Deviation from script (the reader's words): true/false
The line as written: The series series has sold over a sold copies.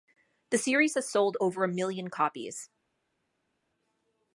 true